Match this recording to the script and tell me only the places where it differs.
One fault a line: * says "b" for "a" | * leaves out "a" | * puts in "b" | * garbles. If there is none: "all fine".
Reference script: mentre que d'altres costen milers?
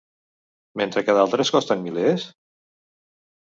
all fine